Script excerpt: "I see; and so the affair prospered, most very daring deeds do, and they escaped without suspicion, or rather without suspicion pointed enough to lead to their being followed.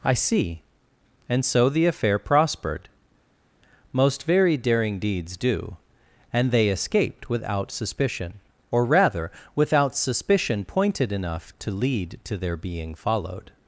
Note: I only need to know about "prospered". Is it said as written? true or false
true